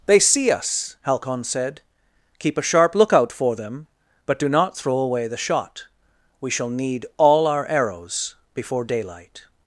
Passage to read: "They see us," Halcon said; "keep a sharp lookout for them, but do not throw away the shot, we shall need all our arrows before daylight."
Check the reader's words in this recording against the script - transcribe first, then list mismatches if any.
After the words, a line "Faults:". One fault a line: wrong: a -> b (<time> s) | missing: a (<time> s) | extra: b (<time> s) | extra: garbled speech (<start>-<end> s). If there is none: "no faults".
"They see us," Halcon said; "keep a sharp lookout for them, but do not throw away the shot, we shall need all our arrows before daylight."
Faults:
no faults